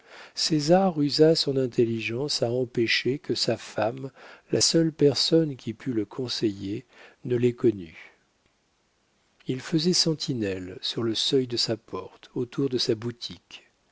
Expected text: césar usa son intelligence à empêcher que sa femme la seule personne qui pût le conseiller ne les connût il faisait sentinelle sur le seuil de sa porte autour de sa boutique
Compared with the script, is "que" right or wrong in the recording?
right